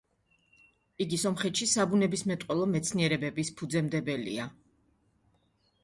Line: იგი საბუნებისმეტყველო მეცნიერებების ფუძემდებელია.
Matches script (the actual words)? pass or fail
fail